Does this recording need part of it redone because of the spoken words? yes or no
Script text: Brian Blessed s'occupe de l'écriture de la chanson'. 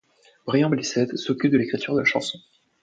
no